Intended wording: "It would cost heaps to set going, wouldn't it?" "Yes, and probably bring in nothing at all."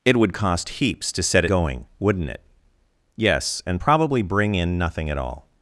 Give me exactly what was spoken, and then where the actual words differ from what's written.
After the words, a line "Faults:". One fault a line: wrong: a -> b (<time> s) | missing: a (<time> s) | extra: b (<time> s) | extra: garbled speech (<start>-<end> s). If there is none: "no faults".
"It would cost heaps to set going, wouldn't it?" "Yes, and probably bring in nothing at all."
Faults:
no faults